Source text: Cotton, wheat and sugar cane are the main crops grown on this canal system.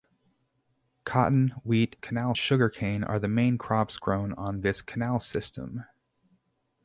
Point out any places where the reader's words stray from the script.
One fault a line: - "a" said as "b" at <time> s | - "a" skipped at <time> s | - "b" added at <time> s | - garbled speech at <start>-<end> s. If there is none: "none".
- "and" said as "canal" at 2.0 s